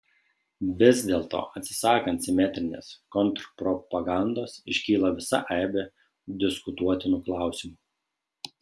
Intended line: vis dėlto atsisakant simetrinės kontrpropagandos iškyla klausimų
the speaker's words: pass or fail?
fail